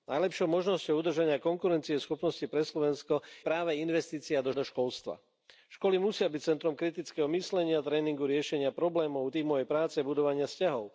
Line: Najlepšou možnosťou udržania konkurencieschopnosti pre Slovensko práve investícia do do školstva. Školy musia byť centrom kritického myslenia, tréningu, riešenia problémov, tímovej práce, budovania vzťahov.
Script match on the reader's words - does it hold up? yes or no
yes